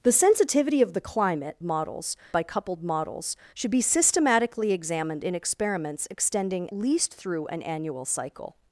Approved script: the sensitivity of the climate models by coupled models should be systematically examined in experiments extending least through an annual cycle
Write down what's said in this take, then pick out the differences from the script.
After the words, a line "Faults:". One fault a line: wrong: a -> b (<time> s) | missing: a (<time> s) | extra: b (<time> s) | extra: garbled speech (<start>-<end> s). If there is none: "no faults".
the sensitivity of the climate models by coupled models should be systematically examined in experiments extending least through an annual cycle
Faults:
no faults